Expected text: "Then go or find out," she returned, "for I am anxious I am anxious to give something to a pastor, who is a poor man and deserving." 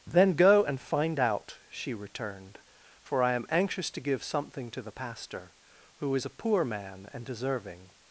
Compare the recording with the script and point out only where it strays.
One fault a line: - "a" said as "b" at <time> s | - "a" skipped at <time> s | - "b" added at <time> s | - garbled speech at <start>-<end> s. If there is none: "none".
- "or" said as "and" at 0.6 s
- "I am anxious" skipped at 3.9 s
- "a" said as "the" at 4.8 s